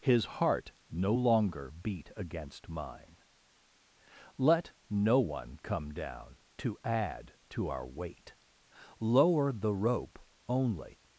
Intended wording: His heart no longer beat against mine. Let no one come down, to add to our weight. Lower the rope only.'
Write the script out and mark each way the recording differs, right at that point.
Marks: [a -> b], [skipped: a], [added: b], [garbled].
His heart no longer beat against mine. Let no one come down, to add to our weight. Lower the rope only.'